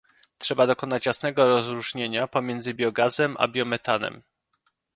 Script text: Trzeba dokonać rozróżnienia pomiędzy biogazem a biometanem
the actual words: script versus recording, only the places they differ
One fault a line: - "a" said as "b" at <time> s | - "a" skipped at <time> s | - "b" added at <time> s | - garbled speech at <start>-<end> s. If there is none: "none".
- "jasnego" added at 1.1 s